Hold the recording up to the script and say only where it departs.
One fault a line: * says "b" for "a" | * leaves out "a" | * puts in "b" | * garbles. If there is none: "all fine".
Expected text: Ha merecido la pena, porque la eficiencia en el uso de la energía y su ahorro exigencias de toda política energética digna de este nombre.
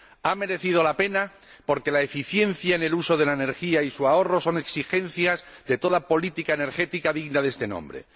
* puts in "son"